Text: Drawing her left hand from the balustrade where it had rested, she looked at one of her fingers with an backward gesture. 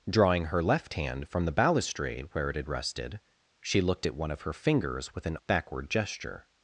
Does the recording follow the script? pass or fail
pass